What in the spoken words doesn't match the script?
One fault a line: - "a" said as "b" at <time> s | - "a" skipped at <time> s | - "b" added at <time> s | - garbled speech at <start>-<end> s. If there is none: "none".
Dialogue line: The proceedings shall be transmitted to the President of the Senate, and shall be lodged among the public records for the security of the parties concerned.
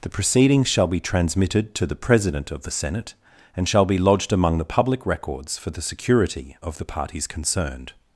none